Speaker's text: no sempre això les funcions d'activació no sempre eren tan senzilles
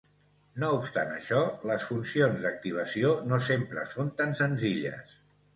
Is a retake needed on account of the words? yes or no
yes